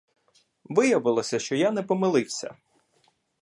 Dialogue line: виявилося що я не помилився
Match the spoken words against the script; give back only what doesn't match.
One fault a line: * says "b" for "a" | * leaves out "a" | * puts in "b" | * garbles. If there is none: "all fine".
all fine